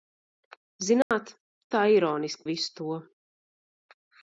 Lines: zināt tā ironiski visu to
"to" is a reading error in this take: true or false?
false